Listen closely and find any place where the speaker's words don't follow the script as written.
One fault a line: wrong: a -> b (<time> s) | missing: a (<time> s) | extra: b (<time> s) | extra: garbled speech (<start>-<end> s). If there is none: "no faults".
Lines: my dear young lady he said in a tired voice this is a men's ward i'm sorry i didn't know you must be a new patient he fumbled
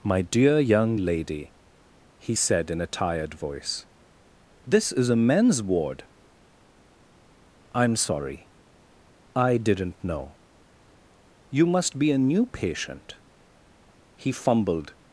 no faults